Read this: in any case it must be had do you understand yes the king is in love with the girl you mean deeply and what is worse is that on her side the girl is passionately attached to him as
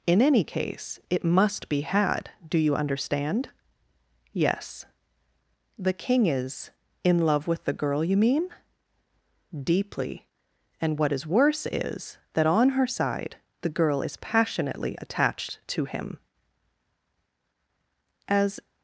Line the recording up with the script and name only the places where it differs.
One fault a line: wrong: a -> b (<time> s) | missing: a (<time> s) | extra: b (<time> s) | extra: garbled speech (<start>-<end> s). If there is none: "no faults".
no faults